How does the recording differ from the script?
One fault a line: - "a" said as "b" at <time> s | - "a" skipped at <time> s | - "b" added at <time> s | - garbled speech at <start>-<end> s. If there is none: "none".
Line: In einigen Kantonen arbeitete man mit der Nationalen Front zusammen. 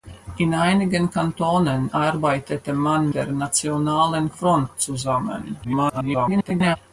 - "mit" skipped at 3.1 s
- garbled speech at 5.6-6.8 s